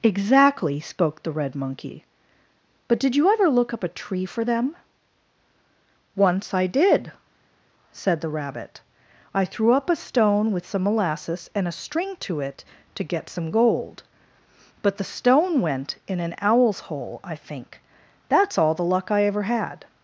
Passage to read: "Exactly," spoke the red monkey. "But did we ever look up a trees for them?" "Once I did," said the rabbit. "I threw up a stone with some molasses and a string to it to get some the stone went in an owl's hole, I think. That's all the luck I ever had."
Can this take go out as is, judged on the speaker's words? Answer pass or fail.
fail